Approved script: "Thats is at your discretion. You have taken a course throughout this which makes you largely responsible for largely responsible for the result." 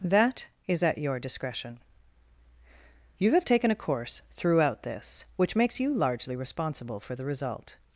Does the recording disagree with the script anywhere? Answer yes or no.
yes